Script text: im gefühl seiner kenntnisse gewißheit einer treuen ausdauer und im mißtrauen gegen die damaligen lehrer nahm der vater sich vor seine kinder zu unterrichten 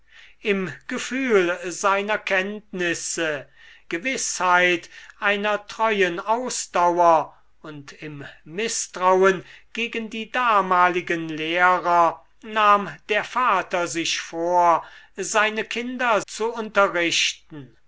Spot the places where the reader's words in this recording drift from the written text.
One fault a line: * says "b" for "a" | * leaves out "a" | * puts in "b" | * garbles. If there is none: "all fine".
all fine